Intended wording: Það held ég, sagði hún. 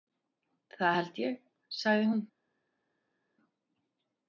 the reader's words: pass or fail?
pass